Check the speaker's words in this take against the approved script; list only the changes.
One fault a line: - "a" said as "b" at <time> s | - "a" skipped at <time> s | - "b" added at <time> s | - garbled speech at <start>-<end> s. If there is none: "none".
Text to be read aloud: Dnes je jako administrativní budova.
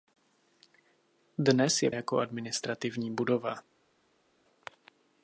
none